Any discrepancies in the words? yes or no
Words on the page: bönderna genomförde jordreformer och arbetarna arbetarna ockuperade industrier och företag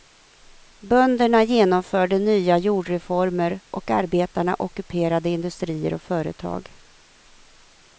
yes